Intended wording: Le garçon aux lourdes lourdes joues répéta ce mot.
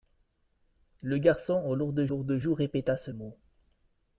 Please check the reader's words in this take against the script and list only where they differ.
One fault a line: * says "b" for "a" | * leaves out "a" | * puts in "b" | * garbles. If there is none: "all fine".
all fine